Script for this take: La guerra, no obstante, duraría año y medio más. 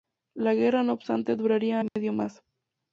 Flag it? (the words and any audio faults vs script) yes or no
yes